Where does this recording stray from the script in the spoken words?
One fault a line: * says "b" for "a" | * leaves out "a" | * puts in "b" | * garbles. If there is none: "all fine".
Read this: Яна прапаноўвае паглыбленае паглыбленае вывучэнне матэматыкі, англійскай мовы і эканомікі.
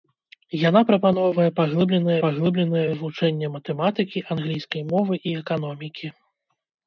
all fine